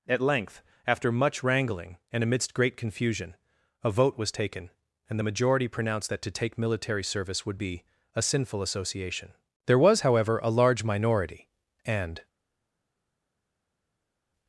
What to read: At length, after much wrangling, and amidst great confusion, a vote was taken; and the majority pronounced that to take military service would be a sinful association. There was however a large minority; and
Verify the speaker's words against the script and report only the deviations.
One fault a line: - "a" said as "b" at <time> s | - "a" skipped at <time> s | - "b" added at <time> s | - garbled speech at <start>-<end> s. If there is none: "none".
none